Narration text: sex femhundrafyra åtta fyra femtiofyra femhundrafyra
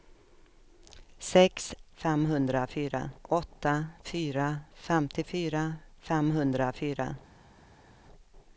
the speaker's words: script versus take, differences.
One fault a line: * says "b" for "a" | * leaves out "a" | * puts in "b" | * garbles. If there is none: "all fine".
all fine